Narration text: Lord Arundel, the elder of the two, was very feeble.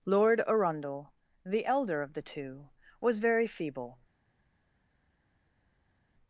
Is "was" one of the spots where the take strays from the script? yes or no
no